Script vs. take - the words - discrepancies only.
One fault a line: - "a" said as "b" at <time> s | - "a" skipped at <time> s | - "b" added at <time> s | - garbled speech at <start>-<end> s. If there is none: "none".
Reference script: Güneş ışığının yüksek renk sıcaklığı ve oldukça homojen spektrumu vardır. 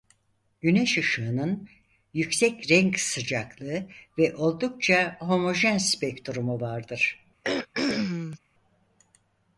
none